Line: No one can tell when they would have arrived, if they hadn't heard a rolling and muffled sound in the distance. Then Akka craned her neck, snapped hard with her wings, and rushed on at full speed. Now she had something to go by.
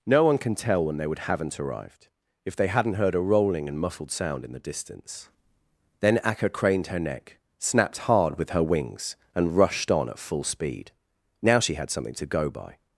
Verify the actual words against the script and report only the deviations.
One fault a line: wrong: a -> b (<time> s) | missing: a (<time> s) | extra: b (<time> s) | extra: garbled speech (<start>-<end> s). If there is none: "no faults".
wrong: have -> haven't (1.2 s)